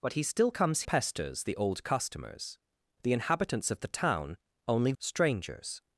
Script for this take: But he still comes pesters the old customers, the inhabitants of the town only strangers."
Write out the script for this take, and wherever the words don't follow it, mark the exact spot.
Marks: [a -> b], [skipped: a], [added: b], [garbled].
But he still comes pesters the old customers, the inhabitants of the town only strangers."